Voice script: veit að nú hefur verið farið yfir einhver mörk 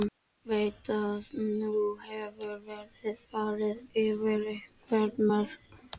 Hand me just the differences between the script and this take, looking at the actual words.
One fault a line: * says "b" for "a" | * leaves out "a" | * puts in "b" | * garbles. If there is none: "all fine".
all fine